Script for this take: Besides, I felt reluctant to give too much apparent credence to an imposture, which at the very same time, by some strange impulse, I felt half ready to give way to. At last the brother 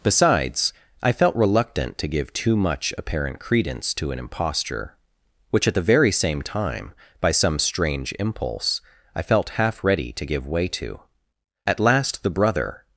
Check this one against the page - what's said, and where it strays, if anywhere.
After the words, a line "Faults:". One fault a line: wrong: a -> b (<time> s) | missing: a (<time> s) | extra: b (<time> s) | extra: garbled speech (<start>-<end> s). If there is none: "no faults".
Besides, I felt reluctant to give too much apparent credence to an imposture, which at the very same time, by some strange impulse, I felt half ready to give way to. At last the brother
Faults:
no faults